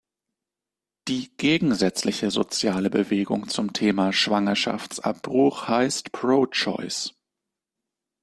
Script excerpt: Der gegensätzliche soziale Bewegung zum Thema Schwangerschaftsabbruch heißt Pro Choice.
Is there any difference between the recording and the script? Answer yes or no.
yes